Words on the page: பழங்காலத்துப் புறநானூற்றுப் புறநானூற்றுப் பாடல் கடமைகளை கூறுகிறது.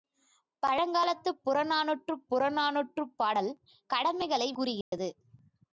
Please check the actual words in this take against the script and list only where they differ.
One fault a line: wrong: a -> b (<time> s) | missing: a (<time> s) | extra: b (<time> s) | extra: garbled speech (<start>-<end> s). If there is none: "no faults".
no faults